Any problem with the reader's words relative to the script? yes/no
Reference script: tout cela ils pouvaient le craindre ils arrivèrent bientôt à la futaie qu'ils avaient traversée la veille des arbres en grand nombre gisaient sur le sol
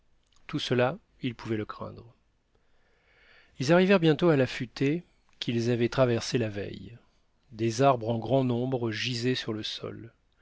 no